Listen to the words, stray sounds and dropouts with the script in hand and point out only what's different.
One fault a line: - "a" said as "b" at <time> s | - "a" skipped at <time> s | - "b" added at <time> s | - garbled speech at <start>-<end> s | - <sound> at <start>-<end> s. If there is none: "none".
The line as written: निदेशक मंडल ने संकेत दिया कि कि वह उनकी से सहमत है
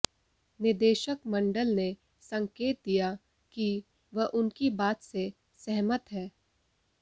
- "कि" skipped at 3.7 s
- "बात" added at 4.8 s